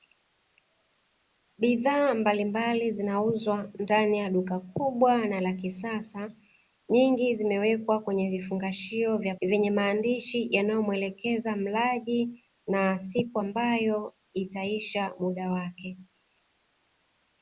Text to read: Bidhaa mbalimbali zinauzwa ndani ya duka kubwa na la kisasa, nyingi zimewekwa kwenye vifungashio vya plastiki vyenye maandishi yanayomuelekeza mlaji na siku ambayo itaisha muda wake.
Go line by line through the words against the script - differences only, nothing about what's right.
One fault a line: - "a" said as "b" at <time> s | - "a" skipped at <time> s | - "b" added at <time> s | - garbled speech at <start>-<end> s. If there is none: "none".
- "plastiki" skipped at 9.3 s